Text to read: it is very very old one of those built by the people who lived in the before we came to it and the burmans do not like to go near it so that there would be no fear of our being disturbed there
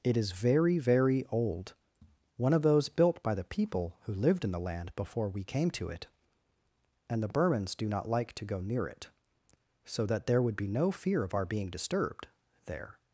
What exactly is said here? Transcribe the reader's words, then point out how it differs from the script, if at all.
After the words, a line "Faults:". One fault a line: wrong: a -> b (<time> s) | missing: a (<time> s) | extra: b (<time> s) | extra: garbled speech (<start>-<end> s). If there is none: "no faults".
it is very very old one of those built by the people who lived in the land before we came to it and the burmans do not like to go near it so that there would be no fear of our being disturbed there
Faults:
extra: land (4.6 s)